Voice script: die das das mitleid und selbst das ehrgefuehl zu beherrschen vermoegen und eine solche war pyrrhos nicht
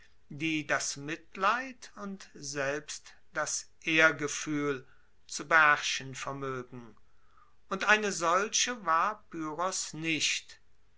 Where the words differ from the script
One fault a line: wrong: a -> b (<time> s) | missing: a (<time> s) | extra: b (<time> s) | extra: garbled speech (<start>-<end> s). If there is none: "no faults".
missing: das (1.0 s)